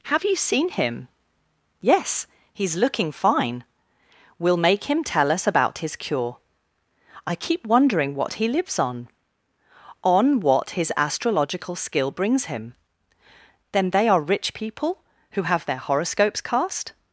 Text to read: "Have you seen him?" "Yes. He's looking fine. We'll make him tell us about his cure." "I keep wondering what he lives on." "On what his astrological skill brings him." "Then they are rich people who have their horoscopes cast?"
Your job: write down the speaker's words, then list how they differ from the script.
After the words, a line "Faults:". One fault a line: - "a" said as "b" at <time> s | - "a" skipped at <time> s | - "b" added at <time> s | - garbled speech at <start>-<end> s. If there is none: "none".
"Have you seen him?" "Yes. He's looking fine. We'll make him tell us about his cure." "I keep wondering what he lives on." "On what his astrological skill brings him." "Then they are rich people who have their horoscopes cast?"
Faults:
none